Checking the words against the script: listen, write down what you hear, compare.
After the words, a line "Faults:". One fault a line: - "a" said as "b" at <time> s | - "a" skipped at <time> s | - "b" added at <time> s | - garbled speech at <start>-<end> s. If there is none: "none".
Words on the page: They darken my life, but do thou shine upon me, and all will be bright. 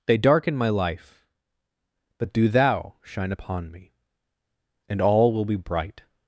They darken my life, but do thou shine upon me, and all will be bright.
Faults:
none